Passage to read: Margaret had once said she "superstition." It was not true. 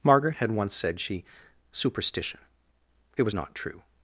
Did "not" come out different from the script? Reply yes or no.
no